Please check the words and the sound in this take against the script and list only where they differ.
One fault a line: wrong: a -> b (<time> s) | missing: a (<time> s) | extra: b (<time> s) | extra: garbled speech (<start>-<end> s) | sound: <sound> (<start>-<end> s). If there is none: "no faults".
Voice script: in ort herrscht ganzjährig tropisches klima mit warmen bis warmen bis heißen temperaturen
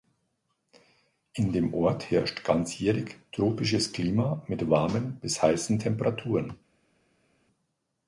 extra: dem (1.5 s)
missing: warmen bis (5.4 s)